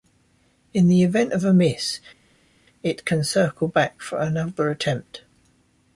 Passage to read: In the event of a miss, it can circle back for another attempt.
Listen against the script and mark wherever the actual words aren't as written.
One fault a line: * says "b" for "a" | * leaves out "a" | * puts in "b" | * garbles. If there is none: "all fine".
all fine